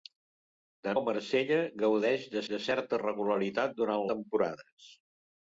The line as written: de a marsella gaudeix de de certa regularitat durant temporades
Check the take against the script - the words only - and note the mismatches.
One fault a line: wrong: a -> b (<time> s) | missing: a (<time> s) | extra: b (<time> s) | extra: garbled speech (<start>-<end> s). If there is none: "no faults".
no faults